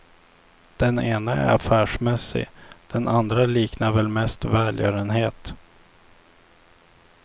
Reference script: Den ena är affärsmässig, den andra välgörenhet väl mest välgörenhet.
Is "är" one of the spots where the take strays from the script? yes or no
no